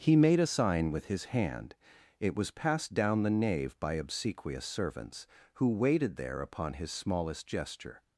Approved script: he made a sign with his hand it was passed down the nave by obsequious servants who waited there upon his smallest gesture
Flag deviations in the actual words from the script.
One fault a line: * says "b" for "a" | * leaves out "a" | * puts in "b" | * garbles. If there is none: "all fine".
all fine